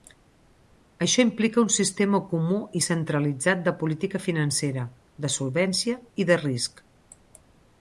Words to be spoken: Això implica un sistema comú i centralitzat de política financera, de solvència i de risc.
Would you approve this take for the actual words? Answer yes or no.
yes